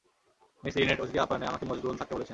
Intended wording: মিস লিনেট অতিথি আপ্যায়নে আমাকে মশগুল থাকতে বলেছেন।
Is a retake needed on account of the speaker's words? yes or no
no